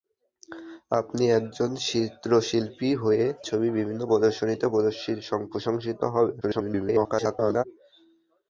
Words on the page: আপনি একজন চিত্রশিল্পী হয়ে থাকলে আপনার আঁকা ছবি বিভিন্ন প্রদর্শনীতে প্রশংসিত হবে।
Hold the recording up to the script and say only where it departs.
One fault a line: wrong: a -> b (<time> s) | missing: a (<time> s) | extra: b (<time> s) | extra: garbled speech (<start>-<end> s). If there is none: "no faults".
missing: থাকলে আপনার আঁকা (3.2 s)
extra: garbled speech (6.4-7.6 s)